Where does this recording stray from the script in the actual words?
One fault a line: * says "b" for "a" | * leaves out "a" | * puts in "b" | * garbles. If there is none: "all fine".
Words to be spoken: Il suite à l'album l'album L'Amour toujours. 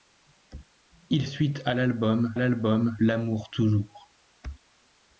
all fine